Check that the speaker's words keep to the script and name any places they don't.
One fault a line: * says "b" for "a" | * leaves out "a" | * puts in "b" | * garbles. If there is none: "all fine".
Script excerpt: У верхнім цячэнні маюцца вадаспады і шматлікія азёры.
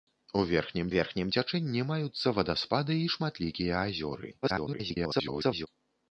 * puts in "верхнім"
* garbles